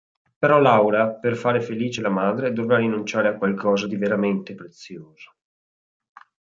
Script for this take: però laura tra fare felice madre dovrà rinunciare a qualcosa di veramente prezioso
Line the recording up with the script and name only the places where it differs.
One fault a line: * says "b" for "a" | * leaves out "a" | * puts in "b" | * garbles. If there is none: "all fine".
* says "per" for "tra"
* puts in "la"